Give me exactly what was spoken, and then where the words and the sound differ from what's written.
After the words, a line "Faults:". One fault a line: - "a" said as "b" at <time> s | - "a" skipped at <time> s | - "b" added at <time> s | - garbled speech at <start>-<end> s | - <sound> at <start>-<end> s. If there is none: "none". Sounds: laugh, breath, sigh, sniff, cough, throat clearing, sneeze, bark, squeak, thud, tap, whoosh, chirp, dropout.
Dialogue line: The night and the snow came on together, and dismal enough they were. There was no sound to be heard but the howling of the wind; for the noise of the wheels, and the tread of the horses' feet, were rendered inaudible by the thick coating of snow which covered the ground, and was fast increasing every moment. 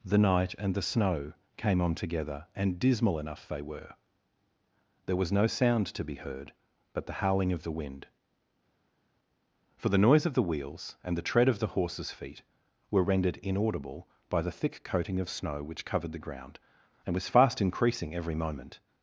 The night and the snow came on together, and dismal enough they were. There was no sound to be heard but the howling of the wind; for the noise of the wheels, and the tread of the horses' feet, were rendered inaudible by the thick coating of snow which covered the ground, and was fast increasing every moment.
Faults:
none